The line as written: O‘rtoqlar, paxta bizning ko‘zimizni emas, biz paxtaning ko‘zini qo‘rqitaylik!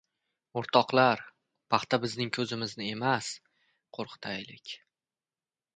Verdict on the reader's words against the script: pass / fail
fail